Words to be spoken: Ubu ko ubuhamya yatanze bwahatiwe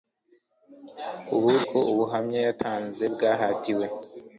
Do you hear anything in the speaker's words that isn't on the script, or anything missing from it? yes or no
no